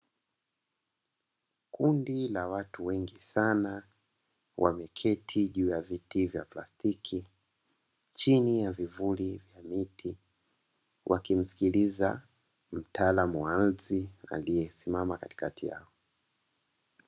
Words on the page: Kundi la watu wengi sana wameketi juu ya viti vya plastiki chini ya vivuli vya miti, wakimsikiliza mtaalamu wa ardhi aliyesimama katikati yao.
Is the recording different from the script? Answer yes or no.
no